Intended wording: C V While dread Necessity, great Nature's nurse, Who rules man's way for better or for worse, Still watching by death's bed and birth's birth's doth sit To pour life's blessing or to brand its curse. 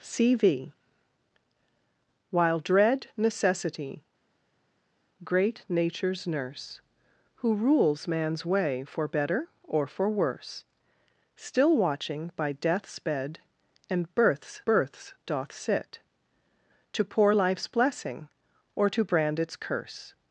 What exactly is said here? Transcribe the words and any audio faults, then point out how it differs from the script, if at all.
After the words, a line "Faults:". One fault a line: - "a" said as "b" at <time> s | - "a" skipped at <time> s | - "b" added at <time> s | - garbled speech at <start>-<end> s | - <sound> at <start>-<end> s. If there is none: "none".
C V While dread Necessity, great Nature's nurse, Who rules man's way for better or for worse, Still watching by death's bed and birth's birth's doth sit To pour life's blessing or to brand its curse.
Faults:
none